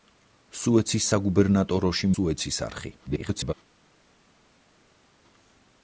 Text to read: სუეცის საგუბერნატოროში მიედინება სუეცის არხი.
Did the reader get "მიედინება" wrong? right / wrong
wrong